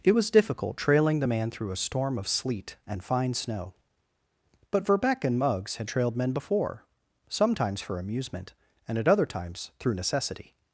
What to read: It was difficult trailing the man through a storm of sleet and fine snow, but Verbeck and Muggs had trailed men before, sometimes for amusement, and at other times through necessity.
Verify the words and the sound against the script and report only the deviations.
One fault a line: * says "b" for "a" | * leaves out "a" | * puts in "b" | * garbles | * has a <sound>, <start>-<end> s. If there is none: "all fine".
all fine